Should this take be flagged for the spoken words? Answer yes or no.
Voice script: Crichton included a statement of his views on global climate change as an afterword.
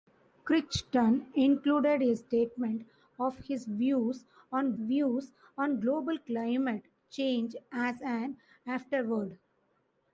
yes